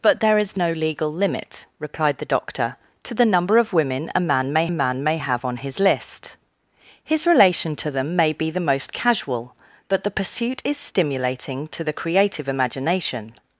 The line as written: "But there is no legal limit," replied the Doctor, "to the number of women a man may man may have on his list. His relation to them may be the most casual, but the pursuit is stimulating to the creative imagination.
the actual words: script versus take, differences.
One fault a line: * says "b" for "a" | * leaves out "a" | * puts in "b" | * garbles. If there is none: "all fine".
all fine